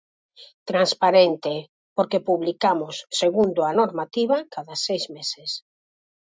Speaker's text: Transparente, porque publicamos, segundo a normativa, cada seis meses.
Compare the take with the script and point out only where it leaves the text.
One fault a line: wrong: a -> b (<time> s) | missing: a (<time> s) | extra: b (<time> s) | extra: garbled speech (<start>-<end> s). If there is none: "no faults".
no faults